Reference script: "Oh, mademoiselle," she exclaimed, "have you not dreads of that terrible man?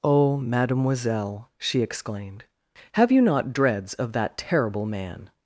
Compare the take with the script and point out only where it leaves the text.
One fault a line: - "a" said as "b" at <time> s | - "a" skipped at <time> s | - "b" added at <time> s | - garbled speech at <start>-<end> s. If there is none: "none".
none